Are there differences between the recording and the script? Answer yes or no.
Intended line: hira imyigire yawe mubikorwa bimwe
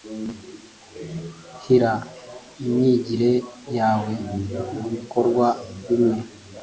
no